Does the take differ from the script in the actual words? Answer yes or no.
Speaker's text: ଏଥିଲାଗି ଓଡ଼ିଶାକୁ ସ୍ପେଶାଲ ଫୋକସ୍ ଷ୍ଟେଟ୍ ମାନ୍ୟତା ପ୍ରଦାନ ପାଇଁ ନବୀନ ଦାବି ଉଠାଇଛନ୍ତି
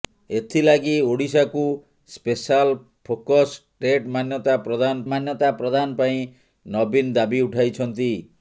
yes